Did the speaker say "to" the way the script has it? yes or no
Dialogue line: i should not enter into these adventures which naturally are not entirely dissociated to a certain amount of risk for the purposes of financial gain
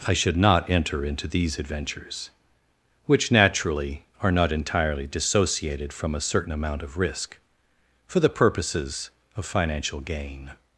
no